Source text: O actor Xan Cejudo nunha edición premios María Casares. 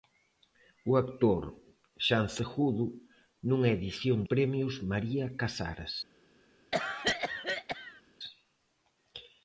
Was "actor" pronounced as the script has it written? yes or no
yes